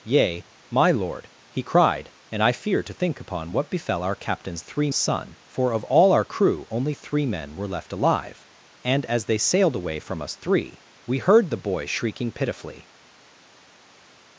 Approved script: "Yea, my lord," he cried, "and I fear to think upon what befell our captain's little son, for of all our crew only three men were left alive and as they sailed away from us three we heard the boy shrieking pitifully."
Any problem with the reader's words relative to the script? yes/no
yes